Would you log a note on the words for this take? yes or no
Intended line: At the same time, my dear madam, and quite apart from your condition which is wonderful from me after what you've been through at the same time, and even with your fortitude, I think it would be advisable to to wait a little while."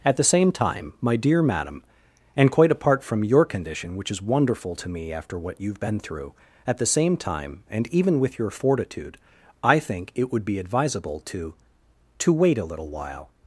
yes